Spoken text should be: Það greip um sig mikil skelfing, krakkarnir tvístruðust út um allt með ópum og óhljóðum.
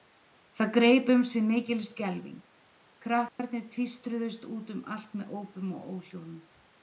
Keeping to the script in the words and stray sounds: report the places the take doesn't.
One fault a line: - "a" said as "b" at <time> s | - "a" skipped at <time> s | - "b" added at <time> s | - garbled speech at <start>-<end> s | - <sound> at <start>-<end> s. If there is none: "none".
- dropout at 3.3-3.4 s